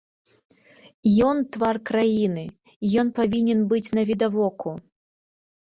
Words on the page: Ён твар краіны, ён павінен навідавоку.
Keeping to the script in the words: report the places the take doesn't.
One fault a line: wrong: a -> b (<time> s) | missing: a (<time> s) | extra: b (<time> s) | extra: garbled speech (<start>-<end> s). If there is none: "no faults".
extra: быць (3.8 s)